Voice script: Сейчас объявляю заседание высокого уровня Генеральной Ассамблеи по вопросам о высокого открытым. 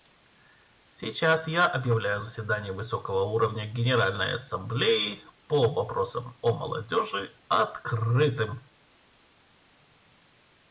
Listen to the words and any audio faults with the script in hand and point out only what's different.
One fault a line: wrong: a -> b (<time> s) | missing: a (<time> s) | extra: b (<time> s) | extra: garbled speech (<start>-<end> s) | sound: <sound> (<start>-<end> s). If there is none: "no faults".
extra: я (1.5 s)
wrong: высокого -> молодежи (6.5 s)